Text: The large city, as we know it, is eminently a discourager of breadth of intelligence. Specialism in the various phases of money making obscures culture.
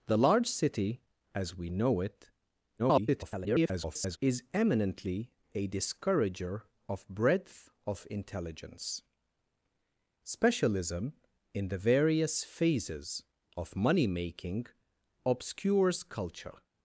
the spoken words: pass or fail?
fail